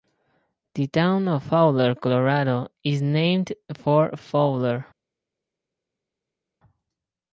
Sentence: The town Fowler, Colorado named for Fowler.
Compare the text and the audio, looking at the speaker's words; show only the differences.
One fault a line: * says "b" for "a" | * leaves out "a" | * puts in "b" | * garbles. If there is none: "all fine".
* puts in "of"
* puts in "is"